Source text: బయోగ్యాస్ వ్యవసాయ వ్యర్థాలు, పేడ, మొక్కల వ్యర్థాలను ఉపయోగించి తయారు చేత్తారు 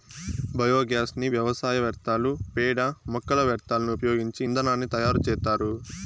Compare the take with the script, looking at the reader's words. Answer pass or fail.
fail